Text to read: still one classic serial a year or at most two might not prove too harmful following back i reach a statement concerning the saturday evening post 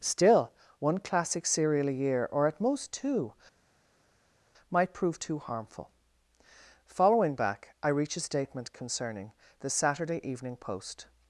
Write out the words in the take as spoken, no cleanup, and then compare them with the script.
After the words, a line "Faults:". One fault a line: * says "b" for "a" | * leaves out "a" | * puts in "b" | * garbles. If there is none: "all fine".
still one classic serial a year or at most two might prove too harmful following back i reach a statement concerning the saturday evening post
Faults:
* leaves out "not"